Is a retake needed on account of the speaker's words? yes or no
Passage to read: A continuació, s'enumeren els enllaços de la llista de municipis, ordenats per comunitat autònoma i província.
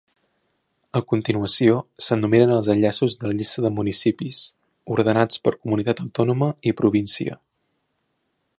no